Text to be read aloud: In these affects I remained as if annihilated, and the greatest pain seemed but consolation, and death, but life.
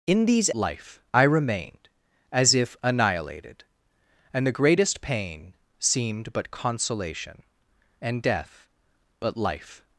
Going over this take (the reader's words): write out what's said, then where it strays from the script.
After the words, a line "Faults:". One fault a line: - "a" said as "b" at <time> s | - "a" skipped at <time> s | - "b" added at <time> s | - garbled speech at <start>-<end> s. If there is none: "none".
In these life I remained as if annihilated, and the greatest pain seemed but consolation, and death, but life.
Faults:
- "affects" said as "life" at 0.5 s